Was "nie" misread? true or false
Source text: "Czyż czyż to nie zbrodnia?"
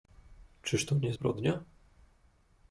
false